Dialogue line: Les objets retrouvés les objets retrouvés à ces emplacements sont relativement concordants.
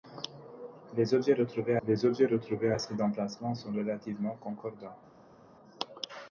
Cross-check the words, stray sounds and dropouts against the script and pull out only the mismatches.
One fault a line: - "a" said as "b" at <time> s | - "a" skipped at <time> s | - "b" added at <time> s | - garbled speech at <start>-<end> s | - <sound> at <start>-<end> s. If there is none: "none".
none